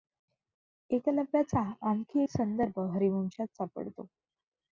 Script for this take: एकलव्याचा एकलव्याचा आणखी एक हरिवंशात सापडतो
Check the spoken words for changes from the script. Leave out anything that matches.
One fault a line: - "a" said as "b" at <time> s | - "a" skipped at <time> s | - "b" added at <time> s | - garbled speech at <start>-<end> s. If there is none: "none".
- "एकलव्याचा" skipped at 1.6 s
- "संदर्भ" added at 2.3 s